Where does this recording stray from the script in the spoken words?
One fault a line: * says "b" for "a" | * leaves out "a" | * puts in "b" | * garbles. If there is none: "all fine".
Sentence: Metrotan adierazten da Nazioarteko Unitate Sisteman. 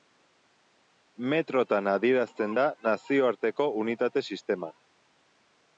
all fine